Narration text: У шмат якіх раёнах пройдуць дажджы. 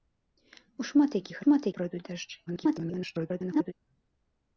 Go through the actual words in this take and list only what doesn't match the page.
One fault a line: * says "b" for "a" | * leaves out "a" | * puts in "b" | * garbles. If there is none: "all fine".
* says "шмат" for "раёнах"
* garbles